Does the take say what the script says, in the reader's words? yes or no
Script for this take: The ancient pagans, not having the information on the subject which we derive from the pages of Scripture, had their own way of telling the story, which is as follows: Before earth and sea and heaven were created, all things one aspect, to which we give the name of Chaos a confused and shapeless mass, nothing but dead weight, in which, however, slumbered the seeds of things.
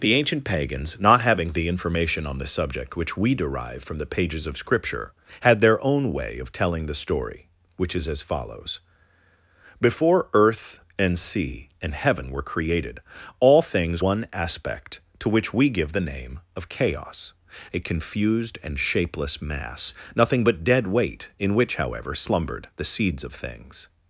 yes